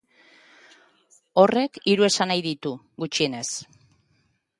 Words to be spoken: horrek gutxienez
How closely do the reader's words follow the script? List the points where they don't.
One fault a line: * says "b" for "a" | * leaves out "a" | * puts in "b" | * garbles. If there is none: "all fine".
* puts in "hiru esanahi ditu"